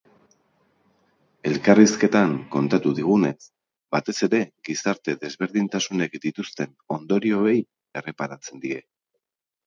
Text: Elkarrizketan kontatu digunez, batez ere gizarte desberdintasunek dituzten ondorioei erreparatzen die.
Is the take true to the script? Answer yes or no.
yes